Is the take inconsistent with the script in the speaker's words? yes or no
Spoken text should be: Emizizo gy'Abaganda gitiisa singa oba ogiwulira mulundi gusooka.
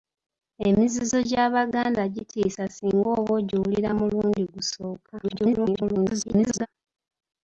yes